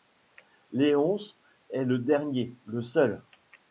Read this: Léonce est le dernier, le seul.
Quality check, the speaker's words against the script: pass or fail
pass